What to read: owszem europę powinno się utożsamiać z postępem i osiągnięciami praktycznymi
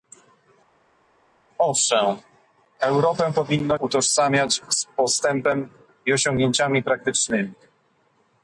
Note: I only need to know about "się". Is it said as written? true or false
false